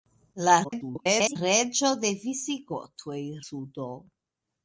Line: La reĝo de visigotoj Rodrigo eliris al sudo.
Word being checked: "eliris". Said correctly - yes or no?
no